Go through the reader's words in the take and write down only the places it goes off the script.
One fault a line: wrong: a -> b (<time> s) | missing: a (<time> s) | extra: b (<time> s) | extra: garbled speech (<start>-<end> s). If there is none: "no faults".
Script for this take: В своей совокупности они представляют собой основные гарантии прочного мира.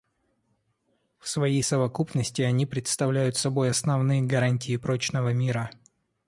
no faults